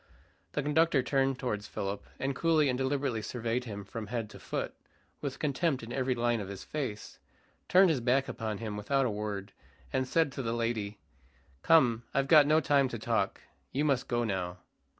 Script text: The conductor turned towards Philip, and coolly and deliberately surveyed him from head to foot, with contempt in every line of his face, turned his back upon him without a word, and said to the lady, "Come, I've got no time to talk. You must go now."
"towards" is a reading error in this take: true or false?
false